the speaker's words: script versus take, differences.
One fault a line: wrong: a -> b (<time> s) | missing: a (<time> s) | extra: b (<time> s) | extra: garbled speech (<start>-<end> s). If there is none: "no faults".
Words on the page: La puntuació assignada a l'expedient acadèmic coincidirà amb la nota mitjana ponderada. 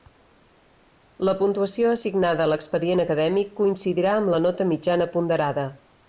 no faults